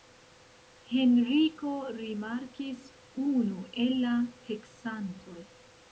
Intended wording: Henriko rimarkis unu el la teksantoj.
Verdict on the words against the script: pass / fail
pass